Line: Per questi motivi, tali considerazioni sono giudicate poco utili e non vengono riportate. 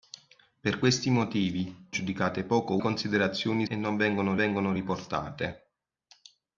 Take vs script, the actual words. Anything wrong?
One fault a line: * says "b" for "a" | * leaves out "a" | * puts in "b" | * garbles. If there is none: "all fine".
* leaves out "tali considerazioni sono"
* says "considerazioni" for "utili"
* puts in "vengono"